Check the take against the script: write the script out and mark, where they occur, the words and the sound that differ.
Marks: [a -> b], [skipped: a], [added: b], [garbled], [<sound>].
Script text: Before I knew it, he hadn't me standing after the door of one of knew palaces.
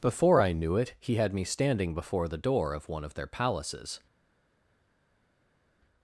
Before I knew it, he [hadn't -> had] me standing [after -> before] the door of one of [knew -> their] palaces.